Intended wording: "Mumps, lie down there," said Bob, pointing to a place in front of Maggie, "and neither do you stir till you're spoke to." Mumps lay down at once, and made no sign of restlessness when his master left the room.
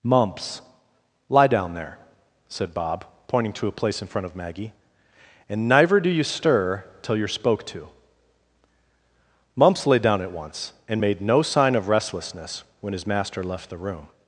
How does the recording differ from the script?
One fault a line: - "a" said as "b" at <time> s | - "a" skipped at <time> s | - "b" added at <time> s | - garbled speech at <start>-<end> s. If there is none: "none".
none